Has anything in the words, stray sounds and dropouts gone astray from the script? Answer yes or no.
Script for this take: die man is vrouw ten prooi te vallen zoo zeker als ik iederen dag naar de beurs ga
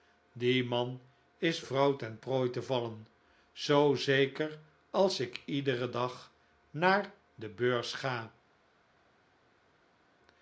no